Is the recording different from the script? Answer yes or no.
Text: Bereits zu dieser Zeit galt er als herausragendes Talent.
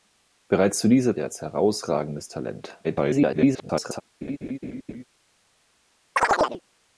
yes